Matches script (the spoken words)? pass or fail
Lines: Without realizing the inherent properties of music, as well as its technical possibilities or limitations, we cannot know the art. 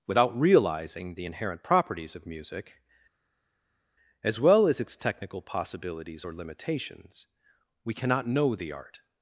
pass